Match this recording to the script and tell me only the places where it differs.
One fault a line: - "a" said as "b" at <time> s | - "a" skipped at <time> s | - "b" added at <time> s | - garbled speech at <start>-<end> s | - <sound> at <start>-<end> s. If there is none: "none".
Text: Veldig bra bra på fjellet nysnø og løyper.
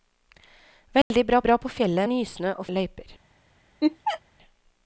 - dropout at 1.0-1.1 s
- laugh at 3.8-4.2 s